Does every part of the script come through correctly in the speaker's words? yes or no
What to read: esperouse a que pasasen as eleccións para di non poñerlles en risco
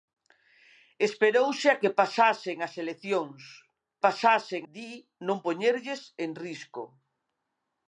no